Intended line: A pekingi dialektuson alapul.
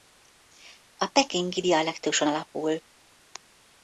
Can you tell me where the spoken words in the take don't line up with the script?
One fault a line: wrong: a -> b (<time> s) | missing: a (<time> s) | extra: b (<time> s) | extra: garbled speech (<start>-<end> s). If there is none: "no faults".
no faults